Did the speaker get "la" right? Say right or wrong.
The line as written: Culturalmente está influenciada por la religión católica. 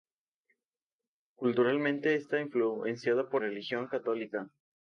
wrong